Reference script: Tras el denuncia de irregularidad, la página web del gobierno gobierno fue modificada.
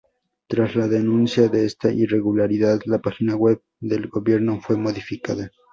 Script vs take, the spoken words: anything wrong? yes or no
yes